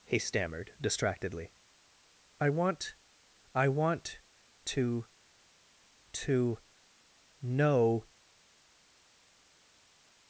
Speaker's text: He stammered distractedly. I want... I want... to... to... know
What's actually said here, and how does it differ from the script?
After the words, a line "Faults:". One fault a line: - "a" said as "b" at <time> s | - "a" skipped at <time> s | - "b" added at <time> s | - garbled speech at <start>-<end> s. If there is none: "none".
He stammered distractedly. I want... I want... to... to... know
Faults:
none